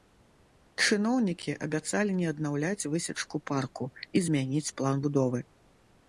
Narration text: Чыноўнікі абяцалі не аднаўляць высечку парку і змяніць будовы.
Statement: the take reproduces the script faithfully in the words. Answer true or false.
false